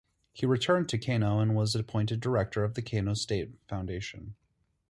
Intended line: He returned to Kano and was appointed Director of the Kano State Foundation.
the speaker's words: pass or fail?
pass